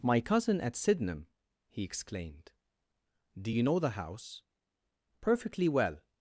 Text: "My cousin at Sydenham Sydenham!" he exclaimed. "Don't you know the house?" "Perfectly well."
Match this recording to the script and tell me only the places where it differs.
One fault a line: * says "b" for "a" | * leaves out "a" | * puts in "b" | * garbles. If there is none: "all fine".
* leaves out "Sydenham"
* says "Do" for "Don't"